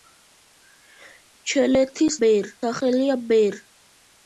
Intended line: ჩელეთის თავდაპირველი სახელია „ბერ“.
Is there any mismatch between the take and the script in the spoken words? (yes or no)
yes